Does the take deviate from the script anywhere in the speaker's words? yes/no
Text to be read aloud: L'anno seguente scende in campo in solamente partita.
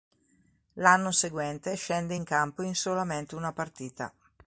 yes